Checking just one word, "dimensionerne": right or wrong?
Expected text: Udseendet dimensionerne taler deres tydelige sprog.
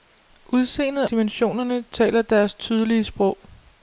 right